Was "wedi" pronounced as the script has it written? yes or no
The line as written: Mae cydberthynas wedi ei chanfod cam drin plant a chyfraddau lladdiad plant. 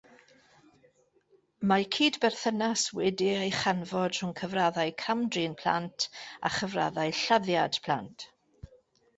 yes